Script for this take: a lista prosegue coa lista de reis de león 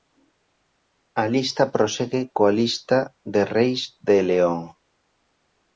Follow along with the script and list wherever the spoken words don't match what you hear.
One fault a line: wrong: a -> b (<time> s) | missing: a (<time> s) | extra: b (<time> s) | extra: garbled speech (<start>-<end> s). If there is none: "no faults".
no faults